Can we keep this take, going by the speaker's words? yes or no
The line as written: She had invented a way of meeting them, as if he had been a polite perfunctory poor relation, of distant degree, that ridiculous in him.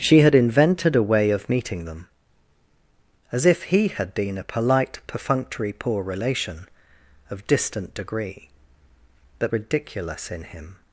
yes